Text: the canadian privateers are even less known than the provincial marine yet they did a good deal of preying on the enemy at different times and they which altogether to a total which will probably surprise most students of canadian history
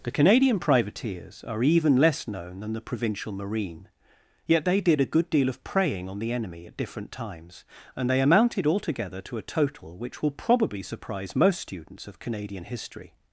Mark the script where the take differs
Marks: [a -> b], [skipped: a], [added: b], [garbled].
the canadian privateers are even less known than the provincial marine yet they did a good deal of preying on the enemy at different times and they [which -> amounted] altogether to a total which will probably surprise most students of canadian history